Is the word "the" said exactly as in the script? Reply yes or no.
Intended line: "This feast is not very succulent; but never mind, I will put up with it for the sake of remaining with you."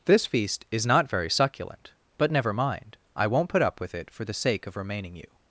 yes